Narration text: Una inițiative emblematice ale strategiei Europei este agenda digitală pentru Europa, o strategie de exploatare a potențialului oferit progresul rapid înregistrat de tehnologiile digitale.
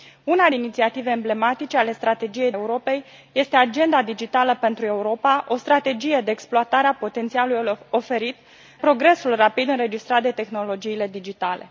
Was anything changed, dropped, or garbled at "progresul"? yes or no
no